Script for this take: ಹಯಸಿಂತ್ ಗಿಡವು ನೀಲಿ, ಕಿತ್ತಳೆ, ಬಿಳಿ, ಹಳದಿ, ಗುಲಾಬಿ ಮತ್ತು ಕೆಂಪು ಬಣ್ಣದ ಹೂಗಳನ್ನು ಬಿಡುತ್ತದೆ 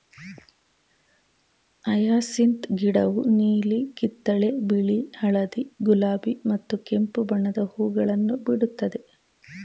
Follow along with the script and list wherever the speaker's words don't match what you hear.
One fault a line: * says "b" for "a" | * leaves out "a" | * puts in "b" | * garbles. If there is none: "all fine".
all fine